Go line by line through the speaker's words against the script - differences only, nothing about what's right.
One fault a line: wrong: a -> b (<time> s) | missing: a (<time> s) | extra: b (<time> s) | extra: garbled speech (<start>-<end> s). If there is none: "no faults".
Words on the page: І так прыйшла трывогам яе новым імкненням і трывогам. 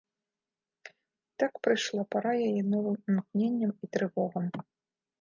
wrong: трывогам -> пара (2.2 s)